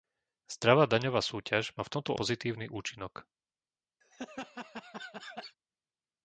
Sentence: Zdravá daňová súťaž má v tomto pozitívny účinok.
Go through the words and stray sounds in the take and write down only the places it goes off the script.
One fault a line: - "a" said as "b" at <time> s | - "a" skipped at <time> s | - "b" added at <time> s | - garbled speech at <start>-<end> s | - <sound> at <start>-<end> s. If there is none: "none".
- laugh at 4.0-5.6 s